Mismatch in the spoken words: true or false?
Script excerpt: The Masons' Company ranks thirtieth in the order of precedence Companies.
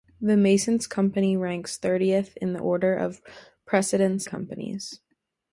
false